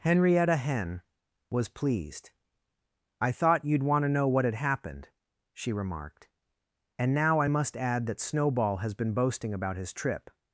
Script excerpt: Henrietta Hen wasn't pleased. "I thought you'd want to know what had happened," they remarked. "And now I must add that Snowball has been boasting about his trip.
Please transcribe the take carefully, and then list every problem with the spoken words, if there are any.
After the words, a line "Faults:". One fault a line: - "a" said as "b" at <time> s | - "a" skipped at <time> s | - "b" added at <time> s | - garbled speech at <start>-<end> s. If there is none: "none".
Henrietta Hen was pleased. "I thought you'd want to know what had happened," she remarked. "And now I must add that Snowball has been boasting about his trip.
Faults:
- "wasn't" said as "was" at 1.5 s
- "they" said as "she" at 5.5 s